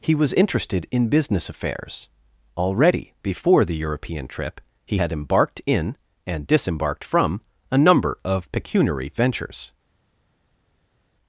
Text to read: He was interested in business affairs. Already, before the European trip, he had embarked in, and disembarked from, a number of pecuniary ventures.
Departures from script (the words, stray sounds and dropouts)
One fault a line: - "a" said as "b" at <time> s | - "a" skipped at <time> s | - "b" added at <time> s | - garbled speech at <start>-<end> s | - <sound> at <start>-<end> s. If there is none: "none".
none